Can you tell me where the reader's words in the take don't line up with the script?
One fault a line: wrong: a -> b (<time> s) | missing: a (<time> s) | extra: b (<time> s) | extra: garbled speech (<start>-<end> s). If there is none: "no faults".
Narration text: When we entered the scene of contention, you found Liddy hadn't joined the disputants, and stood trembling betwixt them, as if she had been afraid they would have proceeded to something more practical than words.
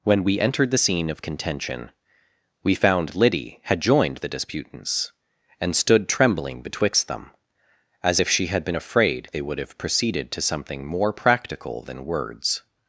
wrong: you -> we (2.6 s)
wrong: hadn't -> had (3.6 s)